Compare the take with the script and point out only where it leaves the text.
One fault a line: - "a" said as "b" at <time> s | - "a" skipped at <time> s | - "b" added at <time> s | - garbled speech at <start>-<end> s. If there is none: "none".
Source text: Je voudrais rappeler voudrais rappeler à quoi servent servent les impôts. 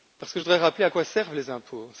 - "voudrais rappeler" skipped at 0.8 s
- "servent" skipped at 1.3 s